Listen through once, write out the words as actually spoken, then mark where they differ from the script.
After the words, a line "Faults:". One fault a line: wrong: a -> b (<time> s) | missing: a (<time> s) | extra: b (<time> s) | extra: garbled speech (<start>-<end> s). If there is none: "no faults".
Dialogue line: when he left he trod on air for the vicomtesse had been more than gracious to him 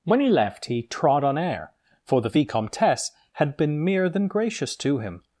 when he left he trod on air for the vicomtesse had been mere than gracious to him
Faults:
wrong: more -> mere (3.8 s)